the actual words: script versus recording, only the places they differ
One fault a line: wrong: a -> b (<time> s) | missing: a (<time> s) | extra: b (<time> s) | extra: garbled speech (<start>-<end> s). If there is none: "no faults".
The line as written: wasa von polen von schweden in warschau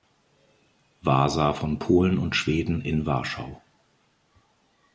wrong: von -> und (2.2 s)